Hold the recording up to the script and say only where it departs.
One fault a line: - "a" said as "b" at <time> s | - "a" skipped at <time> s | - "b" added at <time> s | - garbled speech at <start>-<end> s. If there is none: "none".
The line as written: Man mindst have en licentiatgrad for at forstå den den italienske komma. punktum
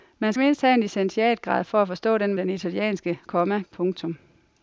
none